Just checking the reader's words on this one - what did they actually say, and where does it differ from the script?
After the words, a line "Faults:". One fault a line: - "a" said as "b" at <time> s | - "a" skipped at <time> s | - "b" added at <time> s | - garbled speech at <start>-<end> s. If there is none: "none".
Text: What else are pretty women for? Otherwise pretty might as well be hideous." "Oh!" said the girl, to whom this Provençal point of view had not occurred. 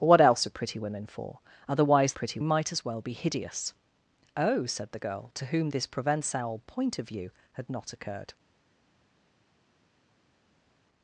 What else are pretty women for? Otherwise pretty might as well be hideous." "Oh!" said the girl, to whom this Provençal point of view had not occurred.
Faults:
none